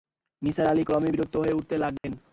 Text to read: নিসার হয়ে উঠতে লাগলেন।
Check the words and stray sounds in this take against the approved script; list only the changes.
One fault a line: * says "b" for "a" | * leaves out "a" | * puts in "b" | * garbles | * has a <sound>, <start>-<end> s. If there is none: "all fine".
* puts in "আলি ক্রমেই বিরক্ত"
* has a dropout, 2.0-2.0 s